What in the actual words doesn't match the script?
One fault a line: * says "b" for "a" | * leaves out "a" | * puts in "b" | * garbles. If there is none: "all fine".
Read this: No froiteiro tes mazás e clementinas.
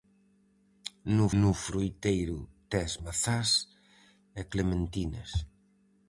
* puts in "no"